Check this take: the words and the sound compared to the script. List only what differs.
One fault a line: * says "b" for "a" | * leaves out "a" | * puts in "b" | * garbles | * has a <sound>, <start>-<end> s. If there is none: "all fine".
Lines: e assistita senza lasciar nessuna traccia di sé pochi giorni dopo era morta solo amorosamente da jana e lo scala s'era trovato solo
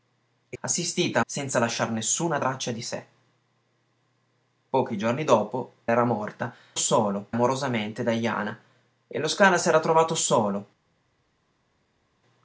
all fine